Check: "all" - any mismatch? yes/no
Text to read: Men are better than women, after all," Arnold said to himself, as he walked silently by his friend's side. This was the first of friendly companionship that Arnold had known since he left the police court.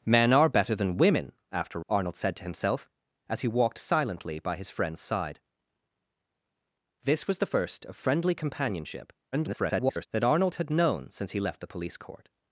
yes